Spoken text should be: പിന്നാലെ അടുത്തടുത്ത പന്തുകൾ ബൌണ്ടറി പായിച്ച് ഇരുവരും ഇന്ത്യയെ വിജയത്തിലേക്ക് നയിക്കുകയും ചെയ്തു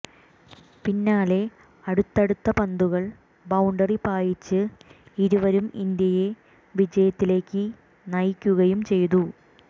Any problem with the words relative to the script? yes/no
no